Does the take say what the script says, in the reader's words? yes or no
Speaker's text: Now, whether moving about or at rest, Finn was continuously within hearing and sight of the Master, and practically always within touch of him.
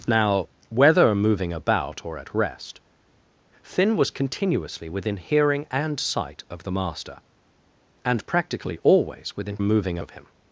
no